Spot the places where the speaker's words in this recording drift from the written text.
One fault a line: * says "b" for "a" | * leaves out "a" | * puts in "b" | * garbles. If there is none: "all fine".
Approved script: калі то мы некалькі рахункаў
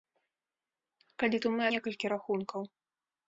all fine